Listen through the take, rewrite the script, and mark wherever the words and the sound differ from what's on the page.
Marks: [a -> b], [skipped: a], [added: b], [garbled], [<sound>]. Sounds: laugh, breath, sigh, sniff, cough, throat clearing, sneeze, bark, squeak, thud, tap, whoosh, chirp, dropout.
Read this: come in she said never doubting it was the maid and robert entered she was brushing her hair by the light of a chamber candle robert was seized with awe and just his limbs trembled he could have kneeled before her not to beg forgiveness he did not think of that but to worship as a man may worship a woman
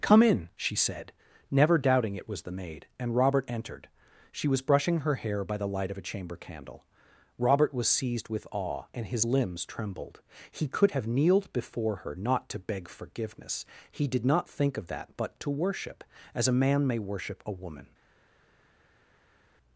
come in she said never doubting it was the maid and robert entered she was brushing her hair by the light of a chamber candle robert was seized with awe and [skipped: just] his limbs trembled he could have kneeled before her not to beg forgiveness he did not think of that but to worship as a man may worship a woman